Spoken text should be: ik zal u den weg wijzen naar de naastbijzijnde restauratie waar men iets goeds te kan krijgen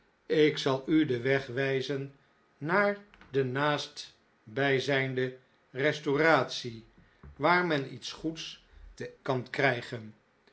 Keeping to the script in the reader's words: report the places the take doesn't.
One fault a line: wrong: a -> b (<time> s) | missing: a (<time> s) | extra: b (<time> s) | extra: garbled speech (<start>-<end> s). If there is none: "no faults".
no faults